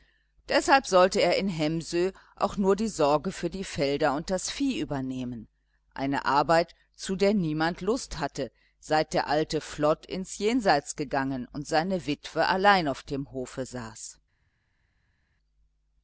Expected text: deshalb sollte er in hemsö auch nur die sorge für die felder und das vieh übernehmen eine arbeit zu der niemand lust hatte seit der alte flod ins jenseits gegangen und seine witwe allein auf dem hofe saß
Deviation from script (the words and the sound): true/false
false